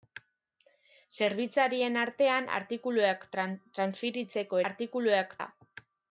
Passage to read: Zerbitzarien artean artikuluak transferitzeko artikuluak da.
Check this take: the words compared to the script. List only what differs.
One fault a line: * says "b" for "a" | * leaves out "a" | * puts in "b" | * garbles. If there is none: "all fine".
all fine